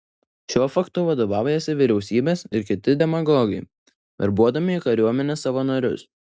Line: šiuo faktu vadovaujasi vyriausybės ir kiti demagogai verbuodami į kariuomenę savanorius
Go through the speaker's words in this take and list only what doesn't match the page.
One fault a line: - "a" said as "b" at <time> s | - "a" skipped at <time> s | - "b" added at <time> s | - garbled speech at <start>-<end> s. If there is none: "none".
none